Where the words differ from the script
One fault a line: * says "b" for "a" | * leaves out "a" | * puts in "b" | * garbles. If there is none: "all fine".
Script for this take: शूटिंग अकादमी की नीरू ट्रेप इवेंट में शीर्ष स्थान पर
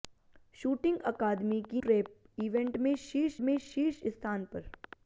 * leaves out "नीरू"
* puts in "में शीर्ष"